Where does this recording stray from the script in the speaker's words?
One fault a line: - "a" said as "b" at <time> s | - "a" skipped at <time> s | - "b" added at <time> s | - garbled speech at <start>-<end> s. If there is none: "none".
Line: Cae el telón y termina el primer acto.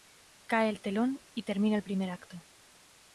none